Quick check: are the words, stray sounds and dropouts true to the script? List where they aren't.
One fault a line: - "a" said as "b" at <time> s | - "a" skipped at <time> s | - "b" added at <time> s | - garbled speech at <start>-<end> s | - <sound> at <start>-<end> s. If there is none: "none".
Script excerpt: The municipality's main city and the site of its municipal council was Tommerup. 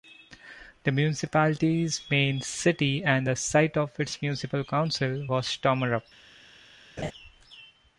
- laugh at 7.0-7.1 s